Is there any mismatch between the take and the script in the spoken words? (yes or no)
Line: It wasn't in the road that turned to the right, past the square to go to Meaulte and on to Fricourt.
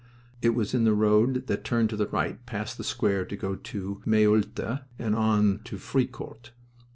yes